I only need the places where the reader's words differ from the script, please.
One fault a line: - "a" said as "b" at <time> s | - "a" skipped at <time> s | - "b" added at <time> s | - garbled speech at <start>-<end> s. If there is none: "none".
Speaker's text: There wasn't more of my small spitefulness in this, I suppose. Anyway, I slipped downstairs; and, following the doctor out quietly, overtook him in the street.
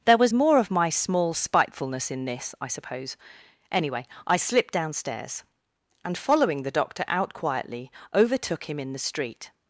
- "wasn't" said as "was" at 0.2 s